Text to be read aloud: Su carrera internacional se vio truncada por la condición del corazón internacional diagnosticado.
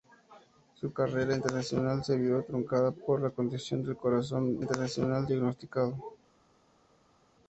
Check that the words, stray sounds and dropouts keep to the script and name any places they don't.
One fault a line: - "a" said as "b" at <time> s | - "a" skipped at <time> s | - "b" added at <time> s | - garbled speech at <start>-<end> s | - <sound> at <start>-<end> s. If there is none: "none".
none